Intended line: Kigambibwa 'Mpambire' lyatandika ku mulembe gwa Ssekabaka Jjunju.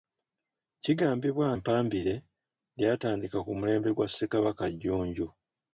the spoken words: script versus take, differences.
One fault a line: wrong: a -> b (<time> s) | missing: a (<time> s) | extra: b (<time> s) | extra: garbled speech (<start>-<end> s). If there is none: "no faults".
no faults